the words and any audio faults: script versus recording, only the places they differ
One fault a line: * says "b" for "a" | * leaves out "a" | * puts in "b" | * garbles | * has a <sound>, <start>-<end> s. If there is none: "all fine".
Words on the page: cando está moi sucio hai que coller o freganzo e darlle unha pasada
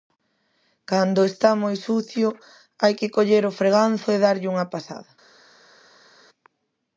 all fine